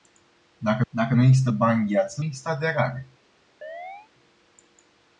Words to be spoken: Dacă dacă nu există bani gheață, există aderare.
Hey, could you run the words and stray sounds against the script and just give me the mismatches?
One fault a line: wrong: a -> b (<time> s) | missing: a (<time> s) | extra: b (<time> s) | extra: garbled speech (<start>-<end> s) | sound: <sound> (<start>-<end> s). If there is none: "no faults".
sound: chirp (3.6-4.1 s)